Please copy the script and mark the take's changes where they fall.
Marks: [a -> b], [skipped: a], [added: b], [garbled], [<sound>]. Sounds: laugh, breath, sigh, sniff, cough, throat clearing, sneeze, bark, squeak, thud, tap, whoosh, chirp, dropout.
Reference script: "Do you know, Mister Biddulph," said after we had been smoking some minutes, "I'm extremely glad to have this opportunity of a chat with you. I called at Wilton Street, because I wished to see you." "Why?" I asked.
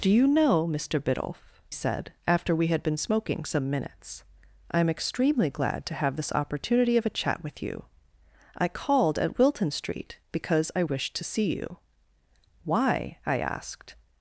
"Do you know, Mister Biddulph," said after we had been smoking some minutes, "I'm extremely glad to have this opportunity of a chat with you. I called at Wilton Street, because I wished to see you." "Why?" I asked.